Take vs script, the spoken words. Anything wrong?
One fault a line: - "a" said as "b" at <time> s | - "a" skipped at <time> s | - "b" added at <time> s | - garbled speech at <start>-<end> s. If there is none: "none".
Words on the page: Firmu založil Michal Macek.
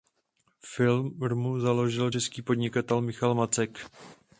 - "český podnikatel" added at 2.1 s